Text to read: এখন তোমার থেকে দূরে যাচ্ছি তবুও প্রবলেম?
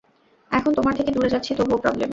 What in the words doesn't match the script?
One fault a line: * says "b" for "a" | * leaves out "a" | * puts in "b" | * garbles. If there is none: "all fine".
all fine